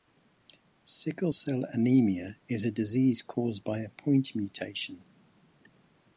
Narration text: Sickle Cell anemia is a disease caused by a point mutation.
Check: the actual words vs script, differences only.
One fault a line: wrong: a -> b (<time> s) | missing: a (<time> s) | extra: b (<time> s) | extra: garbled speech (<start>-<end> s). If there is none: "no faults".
no faults